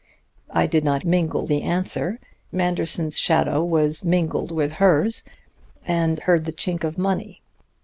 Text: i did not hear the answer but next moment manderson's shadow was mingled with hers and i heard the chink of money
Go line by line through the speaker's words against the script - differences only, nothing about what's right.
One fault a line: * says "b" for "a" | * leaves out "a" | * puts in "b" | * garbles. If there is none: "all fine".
* says "mingled" for "hear"
* leaves out "but next moment"
* leaves out "i"